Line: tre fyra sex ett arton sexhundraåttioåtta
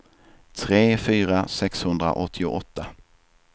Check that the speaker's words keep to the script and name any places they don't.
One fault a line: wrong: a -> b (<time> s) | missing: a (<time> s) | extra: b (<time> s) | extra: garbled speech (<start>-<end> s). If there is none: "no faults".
missing: sex ett arton (1.5 s)